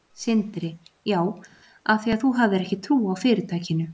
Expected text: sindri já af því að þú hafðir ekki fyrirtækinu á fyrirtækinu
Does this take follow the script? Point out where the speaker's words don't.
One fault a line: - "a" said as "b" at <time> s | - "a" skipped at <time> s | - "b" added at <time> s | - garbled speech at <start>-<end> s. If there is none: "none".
- "fyrirtækinu" said as "trú" at 2.9 s